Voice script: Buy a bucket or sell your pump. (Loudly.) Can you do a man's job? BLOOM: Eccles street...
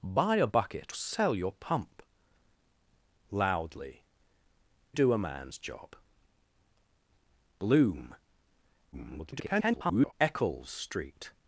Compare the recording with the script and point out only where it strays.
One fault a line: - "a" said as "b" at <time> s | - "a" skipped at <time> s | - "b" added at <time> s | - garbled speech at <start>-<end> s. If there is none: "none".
- "or" skipped at 0.9 s
- "Can you" skipped at 4.0 s
- garbled speech at 8.9-10.1 s